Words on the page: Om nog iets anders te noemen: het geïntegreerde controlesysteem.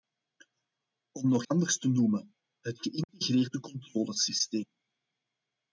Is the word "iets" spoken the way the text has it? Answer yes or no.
no